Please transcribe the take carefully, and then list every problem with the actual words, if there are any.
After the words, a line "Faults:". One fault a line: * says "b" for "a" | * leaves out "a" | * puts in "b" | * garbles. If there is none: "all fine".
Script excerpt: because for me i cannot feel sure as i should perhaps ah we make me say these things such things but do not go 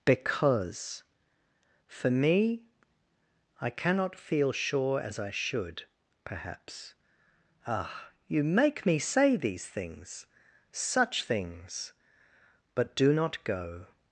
because for me i cannot feel sure as i should perhaps ah you make me say these things such things but do not go
Faults:
* says "you" for "we"